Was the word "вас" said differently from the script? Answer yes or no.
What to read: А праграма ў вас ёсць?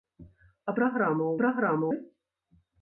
yes